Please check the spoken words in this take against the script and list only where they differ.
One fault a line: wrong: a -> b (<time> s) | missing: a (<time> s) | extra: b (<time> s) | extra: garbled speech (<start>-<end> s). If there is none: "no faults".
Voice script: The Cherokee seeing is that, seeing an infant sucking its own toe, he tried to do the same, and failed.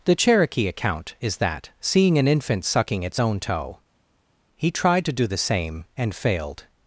wrong: seeing -> account (0.7 s)